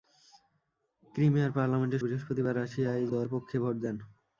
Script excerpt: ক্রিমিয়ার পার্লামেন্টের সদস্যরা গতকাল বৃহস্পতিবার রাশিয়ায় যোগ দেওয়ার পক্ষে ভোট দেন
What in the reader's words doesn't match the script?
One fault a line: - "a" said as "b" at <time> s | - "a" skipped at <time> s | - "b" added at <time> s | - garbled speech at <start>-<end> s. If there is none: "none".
- "সদস্যরা গতকাল" skipped at 2.0 s
- "যোগ" skipped at 3.1 s